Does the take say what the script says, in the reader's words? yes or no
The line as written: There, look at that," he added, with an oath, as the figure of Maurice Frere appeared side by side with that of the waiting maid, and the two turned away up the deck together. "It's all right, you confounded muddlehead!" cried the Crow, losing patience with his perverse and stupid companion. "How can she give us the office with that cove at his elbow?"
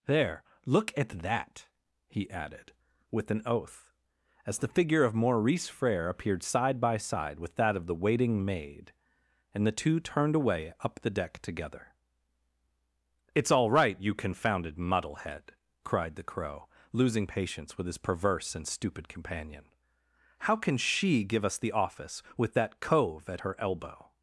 no